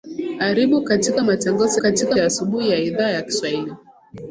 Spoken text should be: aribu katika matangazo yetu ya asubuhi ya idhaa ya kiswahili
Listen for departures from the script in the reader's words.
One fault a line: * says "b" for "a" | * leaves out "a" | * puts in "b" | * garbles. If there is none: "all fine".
* says "katika" for "yetu"